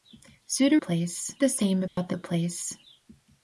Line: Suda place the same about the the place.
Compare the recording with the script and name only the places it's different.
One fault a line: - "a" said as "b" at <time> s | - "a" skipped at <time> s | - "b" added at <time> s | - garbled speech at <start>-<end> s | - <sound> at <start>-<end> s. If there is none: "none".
- dropout at 1.9-2.0 s